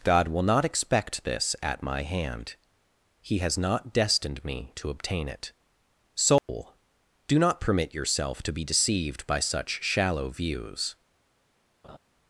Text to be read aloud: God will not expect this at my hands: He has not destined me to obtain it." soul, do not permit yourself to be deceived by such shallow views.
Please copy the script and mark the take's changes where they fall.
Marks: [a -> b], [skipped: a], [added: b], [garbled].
God will not expect this at my [hands: -> hand] He has not destined me to obtain it." soul, do not permit yourself to be deceived by such shallow views.